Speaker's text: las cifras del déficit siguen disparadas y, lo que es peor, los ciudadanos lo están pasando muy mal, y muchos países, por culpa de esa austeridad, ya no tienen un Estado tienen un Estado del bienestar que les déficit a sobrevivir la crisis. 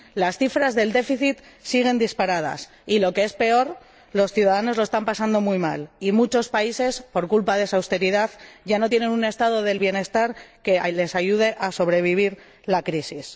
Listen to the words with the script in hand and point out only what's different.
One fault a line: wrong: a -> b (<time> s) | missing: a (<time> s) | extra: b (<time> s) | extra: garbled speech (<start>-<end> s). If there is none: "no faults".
missing: tienen un Estado (9.6 s)
wrong: déficit -> ayude (11.1 s)